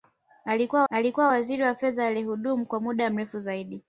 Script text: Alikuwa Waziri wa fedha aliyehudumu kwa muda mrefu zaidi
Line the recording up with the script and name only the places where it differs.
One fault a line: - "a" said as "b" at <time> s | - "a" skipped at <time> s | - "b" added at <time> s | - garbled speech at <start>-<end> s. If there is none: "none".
- "alikuwa" added at 0.9 s